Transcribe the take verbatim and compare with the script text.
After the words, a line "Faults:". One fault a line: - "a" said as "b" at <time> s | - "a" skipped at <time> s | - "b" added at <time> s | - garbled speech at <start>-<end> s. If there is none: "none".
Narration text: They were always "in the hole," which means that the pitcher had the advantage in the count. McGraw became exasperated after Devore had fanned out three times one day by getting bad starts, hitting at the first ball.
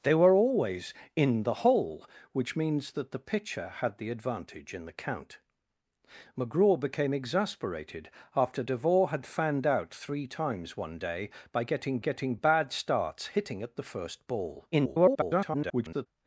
They were always "in the hole," which means that the pitcher had the advantage in the count. McGraw became exasperated after Devore had fanned out three times one day by getting getting bad starts, hitting at the first ball. [garbled]
Faults:
- "getting" added at 12.0 s
- garbled speech at 14.7-16.1 s